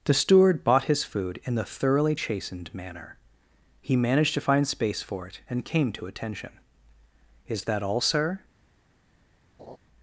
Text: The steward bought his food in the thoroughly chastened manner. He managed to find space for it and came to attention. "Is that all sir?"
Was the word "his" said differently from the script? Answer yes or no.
no